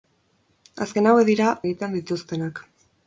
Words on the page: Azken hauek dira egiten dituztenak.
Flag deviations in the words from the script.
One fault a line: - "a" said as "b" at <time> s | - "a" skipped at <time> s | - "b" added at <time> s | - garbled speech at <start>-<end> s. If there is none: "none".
none